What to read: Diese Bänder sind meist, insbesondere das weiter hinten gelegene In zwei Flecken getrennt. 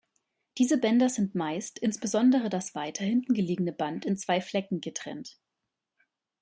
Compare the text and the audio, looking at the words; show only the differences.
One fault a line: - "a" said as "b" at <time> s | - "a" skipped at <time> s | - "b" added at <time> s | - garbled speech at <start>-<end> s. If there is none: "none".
- "Band" added at 3.7 s